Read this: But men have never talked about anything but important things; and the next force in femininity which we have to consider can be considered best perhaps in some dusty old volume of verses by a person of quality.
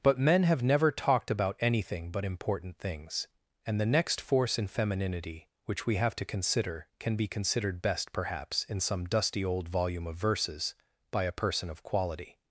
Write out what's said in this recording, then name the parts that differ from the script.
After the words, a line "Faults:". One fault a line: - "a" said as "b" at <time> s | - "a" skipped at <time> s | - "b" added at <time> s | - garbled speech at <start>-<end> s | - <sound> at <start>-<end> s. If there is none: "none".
But men have never talked about anything but important things; and the next force in femininity which we have to consider can be considered best perhaps in some dusty old volume of verses by a person of quality.
Faults:
none